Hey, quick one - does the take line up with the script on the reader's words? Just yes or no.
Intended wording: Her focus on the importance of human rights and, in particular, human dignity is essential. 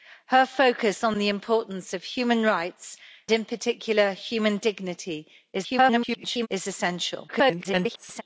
no